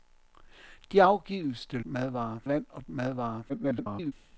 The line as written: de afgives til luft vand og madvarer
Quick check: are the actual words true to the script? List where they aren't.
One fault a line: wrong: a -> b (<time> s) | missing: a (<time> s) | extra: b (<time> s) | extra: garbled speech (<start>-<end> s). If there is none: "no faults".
wrong: luft -> madvarer (1.8 s)
extra: garbled speech (3.5-4.1 s)